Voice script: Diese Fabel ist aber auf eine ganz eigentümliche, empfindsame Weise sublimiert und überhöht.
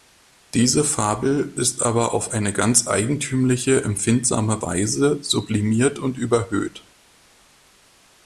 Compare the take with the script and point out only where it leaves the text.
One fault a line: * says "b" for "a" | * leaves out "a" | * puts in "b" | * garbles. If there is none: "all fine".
all fine